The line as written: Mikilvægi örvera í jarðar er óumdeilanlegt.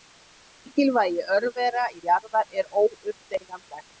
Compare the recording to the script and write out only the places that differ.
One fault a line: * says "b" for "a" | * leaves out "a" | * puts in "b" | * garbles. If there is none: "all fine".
all fine